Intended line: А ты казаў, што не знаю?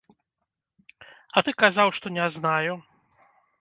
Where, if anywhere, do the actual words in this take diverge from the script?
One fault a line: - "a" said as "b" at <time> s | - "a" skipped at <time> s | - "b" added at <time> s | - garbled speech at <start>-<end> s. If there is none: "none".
none